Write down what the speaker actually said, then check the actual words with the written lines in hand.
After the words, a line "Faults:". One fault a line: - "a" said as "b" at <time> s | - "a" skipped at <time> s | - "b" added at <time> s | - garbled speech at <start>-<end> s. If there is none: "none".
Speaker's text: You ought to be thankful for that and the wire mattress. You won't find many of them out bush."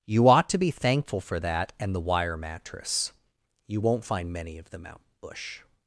You ought to be thankful for that and the wire mattress. You won't find many of them out bush."
Faults:
none